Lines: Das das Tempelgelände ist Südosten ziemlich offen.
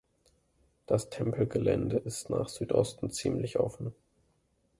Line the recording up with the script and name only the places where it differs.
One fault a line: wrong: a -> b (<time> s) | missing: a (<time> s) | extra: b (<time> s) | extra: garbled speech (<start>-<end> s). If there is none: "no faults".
missing: das (1.1 s)
extra: nach (2.3 s)